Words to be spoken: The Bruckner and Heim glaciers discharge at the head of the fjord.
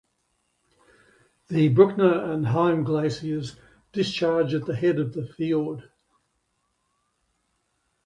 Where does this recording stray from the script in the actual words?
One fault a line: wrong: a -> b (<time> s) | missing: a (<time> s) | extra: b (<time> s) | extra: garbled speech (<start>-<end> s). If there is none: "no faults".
no faults